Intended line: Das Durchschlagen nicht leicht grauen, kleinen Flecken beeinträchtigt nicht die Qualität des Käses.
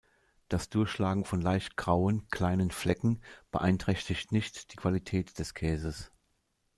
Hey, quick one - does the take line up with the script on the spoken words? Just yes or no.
no